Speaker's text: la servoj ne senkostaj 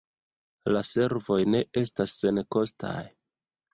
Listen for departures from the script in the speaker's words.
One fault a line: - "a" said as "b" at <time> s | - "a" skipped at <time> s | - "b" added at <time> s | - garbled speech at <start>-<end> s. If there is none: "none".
- "estas" added at 1.8 s